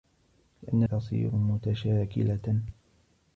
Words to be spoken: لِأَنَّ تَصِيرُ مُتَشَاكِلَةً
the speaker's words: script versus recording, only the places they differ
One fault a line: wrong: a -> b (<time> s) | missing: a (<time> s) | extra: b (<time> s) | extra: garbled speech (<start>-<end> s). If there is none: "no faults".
no faults